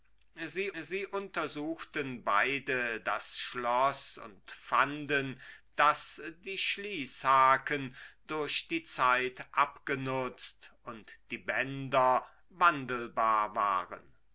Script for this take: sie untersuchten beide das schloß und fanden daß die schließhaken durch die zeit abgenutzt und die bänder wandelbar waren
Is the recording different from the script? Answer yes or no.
yes